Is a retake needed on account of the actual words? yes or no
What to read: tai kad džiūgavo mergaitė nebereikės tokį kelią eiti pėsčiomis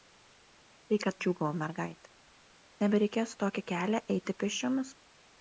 no